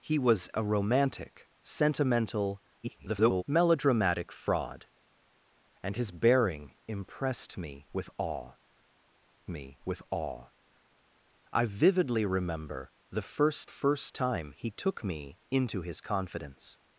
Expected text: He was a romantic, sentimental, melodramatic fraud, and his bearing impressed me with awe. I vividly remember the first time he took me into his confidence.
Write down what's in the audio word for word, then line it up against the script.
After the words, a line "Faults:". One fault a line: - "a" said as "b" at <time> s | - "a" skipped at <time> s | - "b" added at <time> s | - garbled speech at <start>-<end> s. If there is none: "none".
He was a romantic, sentimental, [garbled] melodramatic fraud, and his bearing impressed me with awe me with awe. I vividly remember the first first time he took me into his confidence.
Faults:
- garbled speech at 2.8-3.4 s
- "me with awe" added at 9.5 s
- "first" added at 13.7 s